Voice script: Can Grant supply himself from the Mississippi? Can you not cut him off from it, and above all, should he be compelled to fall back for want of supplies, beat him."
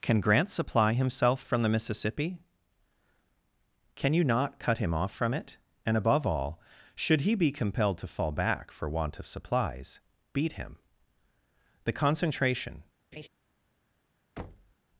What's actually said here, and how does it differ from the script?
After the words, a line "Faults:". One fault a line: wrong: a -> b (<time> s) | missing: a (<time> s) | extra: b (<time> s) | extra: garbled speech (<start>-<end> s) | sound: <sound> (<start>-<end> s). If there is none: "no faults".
Can Grant supply himself from the Mississippi? Can you not cut him off from it, and above all, should he be compelled to fall back for want of supplies, beat him." The concentration
Faults:
extra: The concentration (11.8 s)
sound: laugh (13.1-13.3 s)
sound: thud (14.4-14.7 s)